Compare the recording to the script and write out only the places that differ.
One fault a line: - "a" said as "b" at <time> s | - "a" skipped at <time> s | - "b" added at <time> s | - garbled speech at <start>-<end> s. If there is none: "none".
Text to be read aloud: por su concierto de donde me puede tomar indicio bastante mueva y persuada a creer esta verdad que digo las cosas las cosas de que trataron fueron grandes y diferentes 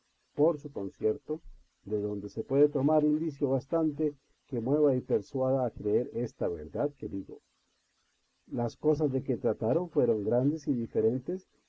- "me" said as "se" at 2.3 s
- "que" added at 4.5 s
- "las cosas" skipped at 9.1 s